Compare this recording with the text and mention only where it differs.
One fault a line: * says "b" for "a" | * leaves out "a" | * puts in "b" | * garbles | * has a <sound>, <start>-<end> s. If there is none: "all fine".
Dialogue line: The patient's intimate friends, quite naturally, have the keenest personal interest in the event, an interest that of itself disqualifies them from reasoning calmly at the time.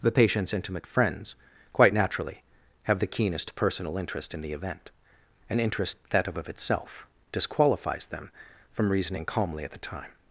* puts in "of"